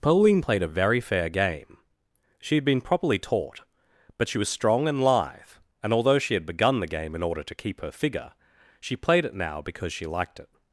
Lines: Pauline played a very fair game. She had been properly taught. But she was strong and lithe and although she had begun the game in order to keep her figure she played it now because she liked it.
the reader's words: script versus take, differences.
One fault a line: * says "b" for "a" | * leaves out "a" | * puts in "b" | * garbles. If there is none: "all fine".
all fine